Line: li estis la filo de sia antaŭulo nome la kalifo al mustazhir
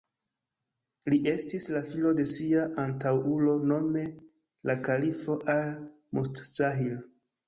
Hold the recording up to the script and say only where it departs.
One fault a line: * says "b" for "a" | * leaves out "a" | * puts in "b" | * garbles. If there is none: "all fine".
all fine